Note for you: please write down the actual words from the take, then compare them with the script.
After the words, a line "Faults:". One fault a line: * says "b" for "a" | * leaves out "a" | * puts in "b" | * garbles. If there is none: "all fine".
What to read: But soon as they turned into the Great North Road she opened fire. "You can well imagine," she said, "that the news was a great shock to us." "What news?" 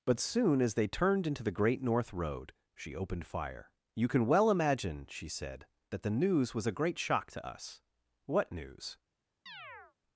But soon as they turned into the Great North Road she opened fire. "You can well imagine," she said, "that the news was a great shock to us." "What news?"
Faults:
all fine